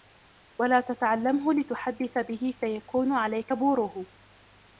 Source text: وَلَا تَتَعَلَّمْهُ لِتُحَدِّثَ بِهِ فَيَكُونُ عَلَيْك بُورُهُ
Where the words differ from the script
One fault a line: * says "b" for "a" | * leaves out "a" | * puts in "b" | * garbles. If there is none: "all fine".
all fine